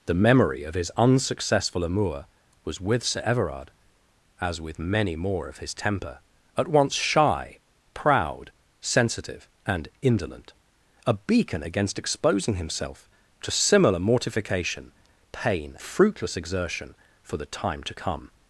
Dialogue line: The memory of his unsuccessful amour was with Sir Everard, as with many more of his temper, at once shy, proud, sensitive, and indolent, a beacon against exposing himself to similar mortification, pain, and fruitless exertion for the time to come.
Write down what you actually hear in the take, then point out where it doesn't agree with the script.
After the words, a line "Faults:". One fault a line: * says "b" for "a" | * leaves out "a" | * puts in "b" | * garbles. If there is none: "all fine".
The memory of his unsuccessful amour was with Sir Everard, as with many more of his temper, at once shy, proud, sensitive, and indolent, a beacon against exposing himself to similar mortification, pain, fruitless exertion for the time to come.
Faults:
* leaves out "and"